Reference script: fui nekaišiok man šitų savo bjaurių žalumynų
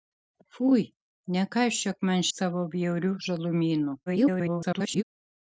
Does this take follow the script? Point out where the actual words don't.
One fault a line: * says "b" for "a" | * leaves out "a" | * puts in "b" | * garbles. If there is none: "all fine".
* leaves out "šitų"
* garbles